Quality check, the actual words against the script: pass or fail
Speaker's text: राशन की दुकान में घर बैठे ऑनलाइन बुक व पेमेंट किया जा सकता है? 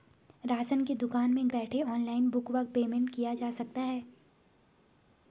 fail